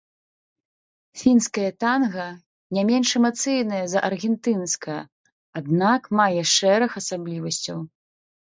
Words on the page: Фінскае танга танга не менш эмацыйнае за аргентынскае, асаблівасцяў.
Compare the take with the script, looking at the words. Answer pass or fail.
fail